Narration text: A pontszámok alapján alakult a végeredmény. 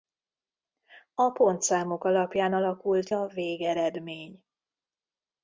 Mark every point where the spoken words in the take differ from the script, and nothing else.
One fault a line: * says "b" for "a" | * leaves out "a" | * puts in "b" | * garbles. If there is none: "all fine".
all fine